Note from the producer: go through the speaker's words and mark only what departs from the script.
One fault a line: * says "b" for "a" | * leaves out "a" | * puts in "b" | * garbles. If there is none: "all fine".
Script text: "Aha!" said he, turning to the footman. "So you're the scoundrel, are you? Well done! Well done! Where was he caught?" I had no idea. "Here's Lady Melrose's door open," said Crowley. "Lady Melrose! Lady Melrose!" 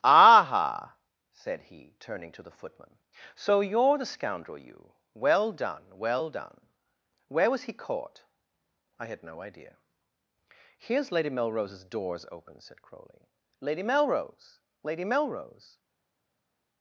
* leaves out "are"
* says "doors" for "door"